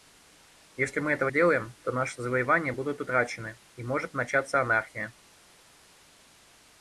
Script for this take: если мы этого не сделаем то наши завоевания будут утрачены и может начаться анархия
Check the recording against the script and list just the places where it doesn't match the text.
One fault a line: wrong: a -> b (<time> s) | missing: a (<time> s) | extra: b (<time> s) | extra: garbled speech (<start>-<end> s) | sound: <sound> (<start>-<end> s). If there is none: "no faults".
missing: не (1.3 s)